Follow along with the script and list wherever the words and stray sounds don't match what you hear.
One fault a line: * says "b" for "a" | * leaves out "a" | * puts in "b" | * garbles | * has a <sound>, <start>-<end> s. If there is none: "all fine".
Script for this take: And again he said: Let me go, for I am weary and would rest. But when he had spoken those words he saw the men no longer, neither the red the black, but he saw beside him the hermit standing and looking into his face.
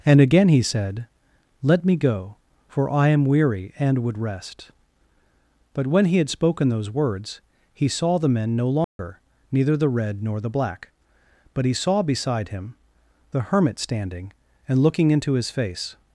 * has a dropout, 8.8-9.0 s
* puts in "nor"